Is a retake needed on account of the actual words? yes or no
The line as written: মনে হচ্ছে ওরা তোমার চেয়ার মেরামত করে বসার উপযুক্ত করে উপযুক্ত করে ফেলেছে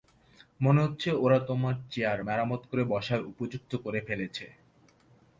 yes